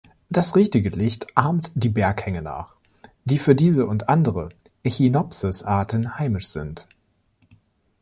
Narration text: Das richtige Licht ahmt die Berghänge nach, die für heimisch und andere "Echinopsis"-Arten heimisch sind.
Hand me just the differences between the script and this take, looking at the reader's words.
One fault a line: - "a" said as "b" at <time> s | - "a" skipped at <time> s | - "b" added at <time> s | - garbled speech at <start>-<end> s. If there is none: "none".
- "heimisch" said as "diese" at 3.5 s